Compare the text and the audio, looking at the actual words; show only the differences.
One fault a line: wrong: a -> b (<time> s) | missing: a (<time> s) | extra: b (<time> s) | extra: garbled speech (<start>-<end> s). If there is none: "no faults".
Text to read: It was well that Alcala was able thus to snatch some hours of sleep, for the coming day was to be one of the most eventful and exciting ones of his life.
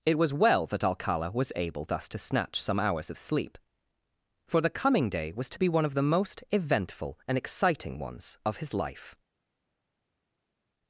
no faults